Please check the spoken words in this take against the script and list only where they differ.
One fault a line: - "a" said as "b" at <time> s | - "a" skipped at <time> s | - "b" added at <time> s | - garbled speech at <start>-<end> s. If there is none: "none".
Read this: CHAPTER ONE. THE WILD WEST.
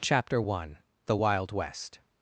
none